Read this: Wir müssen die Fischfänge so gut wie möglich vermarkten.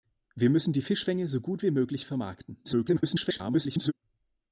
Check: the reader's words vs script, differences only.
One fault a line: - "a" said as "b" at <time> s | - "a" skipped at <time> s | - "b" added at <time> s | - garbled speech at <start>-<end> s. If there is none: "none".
- garbled speech at 2.6-3.9 s